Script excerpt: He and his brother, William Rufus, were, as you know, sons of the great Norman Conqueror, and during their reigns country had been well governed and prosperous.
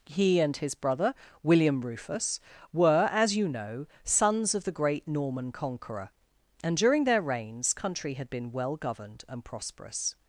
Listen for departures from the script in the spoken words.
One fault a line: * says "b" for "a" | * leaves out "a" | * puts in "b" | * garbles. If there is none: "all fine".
all fine